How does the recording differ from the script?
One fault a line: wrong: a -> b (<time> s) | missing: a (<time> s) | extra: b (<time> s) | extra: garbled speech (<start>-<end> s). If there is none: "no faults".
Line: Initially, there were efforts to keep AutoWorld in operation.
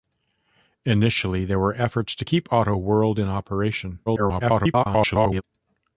extra: garbled speech (4.1-5.4 s)